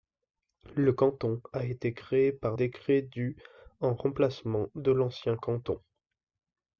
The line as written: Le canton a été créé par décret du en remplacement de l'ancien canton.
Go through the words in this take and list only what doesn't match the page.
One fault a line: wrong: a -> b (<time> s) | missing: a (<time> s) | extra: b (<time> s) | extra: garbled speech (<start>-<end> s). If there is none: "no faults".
no faults